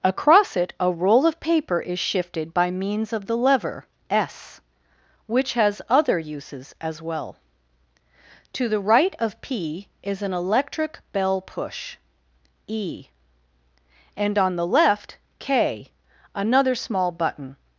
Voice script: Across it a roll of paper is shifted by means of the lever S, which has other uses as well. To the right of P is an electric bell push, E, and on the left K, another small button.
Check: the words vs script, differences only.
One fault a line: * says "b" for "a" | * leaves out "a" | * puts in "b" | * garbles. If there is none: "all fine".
all fine